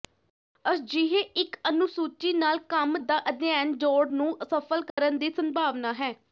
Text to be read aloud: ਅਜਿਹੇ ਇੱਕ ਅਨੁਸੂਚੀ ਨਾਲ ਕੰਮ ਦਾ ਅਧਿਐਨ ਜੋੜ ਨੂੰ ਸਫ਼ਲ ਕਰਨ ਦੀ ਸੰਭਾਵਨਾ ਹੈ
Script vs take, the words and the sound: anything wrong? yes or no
yes